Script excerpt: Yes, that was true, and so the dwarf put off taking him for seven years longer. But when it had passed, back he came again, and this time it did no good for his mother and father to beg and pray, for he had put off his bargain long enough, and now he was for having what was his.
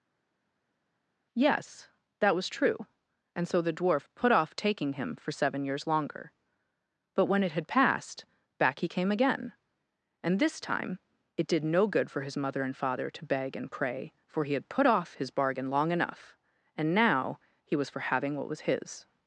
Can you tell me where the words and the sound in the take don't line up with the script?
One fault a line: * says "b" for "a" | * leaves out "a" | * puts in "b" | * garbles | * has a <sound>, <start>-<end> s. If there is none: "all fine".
all fine